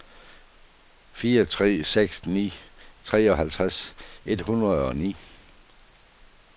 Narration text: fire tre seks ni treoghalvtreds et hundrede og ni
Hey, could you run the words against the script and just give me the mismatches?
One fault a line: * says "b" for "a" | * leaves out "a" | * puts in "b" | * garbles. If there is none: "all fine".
all fine